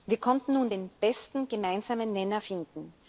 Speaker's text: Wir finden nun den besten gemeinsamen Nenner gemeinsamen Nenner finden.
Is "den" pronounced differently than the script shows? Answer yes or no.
no